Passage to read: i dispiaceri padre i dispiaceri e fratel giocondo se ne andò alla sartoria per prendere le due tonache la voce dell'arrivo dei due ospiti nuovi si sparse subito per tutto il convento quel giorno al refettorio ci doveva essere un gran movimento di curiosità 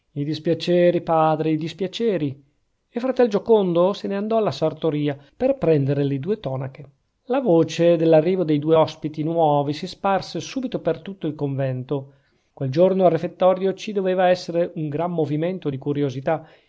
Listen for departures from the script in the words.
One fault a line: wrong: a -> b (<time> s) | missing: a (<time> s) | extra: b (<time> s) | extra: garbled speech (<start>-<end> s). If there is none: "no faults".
no faults